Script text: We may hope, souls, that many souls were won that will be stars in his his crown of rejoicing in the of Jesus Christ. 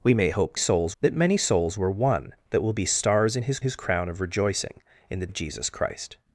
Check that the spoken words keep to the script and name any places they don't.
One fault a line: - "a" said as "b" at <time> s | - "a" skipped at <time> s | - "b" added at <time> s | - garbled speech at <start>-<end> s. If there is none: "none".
none